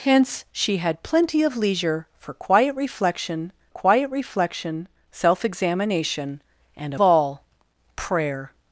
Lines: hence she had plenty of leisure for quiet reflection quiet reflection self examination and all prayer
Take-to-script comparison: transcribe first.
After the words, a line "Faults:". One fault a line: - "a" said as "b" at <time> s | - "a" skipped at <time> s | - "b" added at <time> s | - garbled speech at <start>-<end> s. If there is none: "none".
hence she had plenty of leisure for quiet reflection quiet reflection self examination and all prayer
Faults:
none